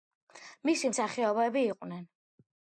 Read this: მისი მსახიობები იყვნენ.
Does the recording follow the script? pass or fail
pass